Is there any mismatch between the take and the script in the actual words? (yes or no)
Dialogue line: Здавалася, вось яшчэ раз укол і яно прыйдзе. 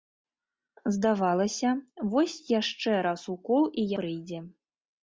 yes